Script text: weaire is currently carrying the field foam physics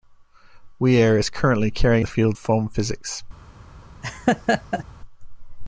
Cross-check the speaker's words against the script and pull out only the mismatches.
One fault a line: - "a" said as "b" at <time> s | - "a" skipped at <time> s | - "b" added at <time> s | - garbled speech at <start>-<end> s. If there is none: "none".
none